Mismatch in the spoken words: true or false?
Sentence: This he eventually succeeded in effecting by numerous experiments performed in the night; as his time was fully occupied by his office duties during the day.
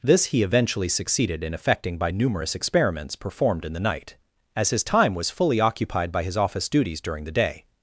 false